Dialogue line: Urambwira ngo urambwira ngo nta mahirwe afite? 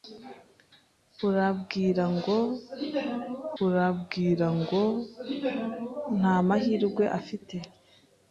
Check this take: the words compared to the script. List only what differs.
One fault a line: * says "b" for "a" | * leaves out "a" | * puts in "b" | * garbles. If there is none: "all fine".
all fine